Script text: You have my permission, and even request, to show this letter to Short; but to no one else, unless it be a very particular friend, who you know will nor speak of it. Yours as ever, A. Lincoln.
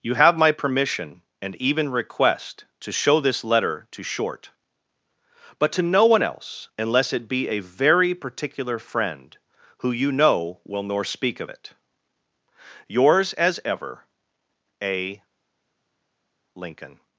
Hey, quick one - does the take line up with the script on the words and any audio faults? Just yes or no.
yes